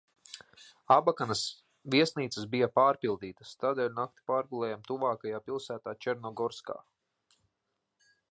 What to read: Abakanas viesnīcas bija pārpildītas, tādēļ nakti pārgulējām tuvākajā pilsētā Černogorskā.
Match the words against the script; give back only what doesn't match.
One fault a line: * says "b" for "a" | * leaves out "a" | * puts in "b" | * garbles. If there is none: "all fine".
all fine